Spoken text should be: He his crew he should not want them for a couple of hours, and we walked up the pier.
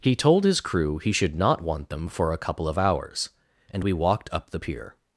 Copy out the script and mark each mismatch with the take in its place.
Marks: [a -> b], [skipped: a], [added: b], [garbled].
He [added: told] his crew he should not want them for a couple of hours, and we walked up the pier.